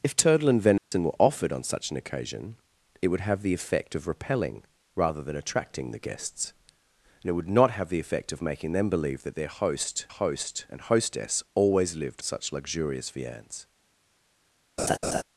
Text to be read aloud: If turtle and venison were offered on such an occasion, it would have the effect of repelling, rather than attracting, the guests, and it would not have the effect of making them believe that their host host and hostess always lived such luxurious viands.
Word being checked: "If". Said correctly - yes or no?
yes